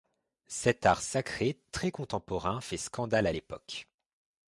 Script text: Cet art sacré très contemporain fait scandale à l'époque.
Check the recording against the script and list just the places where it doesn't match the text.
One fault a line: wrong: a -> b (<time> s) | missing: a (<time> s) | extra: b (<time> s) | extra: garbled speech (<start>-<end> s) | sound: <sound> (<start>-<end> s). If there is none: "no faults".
no faults